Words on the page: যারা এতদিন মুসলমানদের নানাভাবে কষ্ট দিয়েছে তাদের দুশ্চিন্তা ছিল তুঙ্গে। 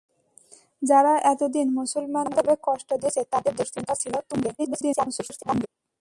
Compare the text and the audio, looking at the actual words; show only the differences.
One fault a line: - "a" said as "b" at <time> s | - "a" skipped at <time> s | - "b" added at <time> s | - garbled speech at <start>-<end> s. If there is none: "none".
- garbled speech at 4.6-5.7 s